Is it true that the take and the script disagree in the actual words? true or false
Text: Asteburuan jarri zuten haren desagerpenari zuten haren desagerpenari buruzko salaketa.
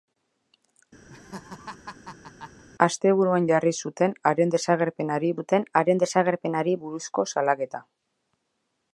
false